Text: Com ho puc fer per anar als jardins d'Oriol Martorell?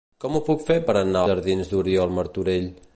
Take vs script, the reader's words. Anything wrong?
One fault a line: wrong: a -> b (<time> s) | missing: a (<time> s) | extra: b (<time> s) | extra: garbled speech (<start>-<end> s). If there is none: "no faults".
missing: als (1.2 s)